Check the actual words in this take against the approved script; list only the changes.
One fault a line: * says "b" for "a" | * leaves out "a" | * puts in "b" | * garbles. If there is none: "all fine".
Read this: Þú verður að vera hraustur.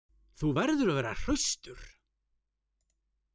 all fine